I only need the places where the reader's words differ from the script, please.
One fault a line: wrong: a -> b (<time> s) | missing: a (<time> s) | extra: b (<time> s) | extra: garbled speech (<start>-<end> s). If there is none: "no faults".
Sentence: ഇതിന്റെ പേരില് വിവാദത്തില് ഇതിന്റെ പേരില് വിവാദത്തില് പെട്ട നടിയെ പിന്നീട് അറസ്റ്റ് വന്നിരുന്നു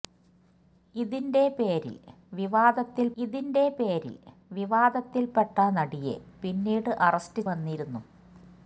no faults